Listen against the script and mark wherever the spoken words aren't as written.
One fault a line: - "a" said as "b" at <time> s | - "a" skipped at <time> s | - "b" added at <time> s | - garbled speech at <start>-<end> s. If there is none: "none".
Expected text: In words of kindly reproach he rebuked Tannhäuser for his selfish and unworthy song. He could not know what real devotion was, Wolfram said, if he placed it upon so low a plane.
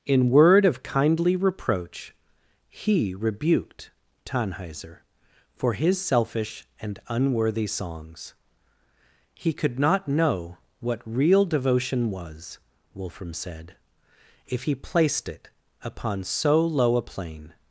- "words" said as "word" at 0.3 s
- "song" said as "songs" at 7.7 s